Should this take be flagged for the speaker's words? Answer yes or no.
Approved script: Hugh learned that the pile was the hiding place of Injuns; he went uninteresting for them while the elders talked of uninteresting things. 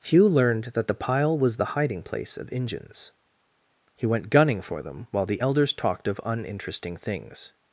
yes